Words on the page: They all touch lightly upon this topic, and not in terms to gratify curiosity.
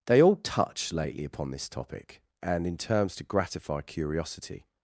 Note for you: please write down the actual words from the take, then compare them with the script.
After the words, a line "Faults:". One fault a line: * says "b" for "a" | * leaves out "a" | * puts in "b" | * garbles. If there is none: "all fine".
They all touch lately upon this topic, and in terms to gratify curiosity.
Faults:
* says "lately" for "lightly"
* leaves out "not"